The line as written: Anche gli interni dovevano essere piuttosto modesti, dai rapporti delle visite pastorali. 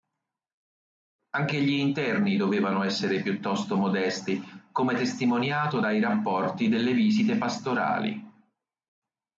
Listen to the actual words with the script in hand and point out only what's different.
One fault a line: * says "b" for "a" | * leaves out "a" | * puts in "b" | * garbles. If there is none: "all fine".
* puts in "come testimoniato"